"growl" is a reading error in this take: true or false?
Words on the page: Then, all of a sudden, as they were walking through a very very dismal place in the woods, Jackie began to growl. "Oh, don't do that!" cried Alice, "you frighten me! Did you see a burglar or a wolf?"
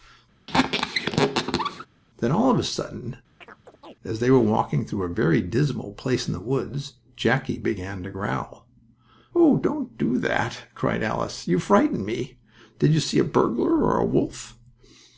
false